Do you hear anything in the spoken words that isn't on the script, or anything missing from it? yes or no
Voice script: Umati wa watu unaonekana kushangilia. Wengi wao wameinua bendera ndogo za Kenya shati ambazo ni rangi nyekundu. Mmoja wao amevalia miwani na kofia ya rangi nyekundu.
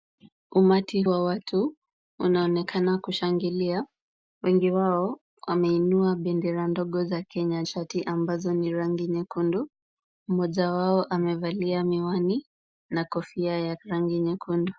no